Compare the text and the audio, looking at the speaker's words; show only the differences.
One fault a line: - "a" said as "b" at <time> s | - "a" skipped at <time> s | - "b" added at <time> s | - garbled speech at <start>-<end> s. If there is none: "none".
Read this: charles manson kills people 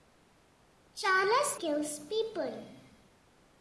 - "manson" skipped at 1.6 s